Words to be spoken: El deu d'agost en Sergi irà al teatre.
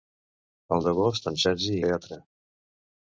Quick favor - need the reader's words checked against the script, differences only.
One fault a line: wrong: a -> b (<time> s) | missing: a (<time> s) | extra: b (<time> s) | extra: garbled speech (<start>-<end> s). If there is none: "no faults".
missing: deu (0.9 s)
missing: irà al (1.8 s)